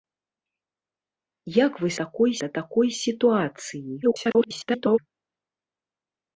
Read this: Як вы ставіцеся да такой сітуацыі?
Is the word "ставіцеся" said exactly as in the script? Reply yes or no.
no